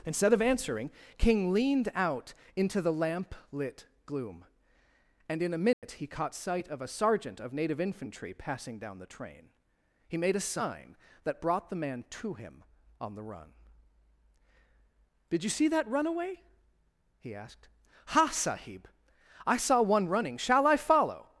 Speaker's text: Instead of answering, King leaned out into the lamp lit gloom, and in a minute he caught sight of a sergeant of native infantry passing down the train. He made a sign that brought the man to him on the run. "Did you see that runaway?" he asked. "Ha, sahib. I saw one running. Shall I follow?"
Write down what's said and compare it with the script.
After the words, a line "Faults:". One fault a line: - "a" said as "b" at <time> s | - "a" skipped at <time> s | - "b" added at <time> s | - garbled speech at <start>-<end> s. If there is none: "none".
Instead of answering, King leaned out into the lamp lit gloom, and in a minute he caught sight of a sergeant of native infantry passing down the train. He made a sign that brought the man to him on the run. "Did you see that runaway?" he asked. "Ha, sahib. I saw one running. Shall I follow?"
Faults:
none